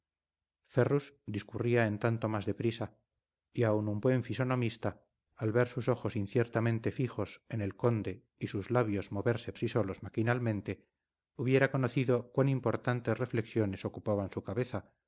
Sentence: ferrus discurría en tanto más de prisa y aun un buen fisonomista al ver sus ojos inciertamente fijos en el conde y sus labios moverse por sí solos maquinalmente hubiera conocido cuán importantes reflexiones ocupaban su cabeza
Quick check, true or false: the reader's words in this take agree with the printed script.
false